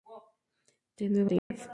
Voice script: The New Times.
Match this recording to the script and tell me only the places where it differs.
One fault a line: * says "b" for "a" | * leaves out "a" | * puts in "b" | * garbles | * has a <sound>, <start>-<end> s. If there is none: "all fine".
* has a dropout, 1.4-1.5 s